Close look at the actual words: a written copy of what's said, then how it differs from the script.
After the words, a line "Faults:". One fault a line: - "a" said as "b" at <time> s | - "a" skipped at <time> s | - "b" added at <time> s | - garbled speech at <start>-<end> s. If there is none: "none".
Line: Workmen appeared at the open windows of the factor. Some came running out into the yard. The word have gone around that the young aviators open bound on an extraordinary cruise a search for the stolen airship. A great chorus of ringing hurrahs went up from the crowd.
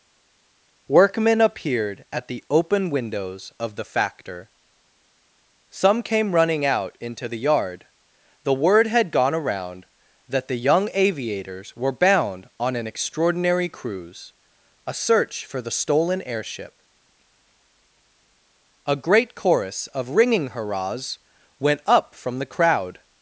Workmen appeared at the open windows of the factor. Some came running out into the yard. The word had gone around that the young aviators were bound on an extraordinary cruise a search for the stolen airship. A great chorus of ringing hurrahs went up from the crowd.
Faults:
- "have" said as "had" at 8.9 s
- "open" said as "were" at 11.8 s